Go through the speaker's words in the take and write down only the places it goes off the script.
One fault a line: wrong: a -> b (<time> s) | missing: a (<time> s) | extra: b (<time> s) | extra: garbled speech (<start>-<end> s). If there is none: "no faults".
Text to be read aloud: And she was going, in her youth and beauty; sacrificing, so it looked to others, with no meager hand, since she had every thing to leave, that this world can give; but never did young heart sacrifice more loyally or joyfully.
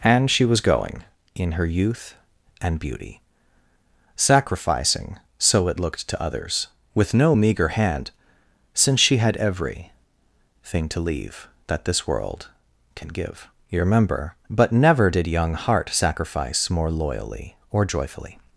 extra: you remember (13.7 s)